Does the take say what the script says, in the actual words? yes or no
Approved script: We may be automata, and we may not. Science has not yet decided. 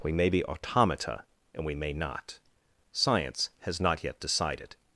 yes